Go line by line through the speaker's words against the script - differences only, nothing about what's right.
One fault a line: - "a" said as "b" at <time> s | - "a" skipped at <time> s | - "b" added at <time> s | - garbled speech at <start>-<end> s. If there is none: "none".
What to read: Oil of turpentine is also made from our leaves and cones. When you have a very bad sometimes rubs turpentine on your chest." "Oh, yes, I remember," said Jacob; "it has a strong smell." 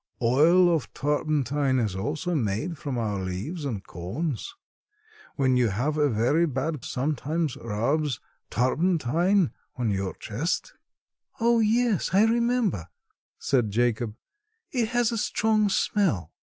none